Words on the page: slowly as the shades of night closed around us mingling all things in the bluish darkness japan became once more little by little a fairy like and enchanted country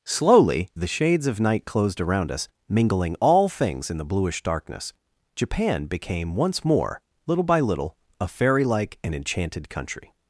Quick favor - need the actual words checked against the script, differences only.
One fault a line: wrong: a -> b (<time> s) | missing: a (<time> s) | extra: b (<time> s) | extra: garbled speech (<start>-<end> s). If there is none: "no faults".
missing: as (0.7 s)